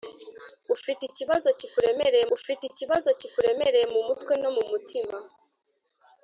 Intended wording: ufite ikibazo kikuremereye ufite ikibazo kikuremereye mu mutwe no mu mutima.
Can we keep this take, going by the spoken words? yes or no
yes